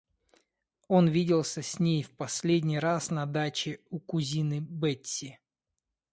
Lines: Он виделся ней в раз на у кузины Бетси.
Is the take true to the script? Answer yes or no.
no